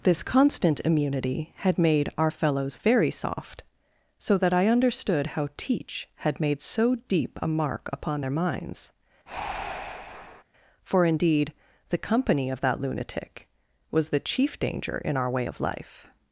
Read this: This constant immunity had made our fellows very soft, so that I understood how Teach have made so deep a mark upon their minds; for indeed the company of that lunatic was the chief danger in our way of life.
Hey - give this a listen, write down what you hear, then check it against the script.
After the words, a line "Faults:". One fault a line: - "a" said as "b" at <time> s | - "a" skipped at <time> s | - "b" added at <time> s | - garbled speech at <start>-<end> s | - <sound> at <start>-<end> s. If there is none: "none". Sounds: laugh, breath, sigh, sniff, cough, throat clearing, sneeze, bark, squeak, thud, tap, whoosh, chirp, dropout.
This constant immunity had made our fellows very soft, so that I understood how Teach had made so deep a mark upon their minds; for indeed the company of that lunatic was the chief danger in our way of life.
Faults:
- "have" said as "had" at 6.2 s
- breath at 9.3-10.4 s